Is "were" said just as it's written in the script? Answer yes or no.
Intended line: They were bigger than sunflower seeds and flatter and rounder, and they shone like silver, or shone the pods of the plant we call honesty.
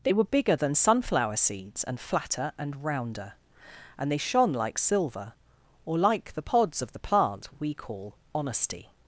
yes